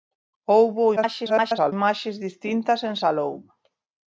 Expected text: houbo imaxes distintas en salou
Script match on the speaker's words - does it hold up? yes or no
no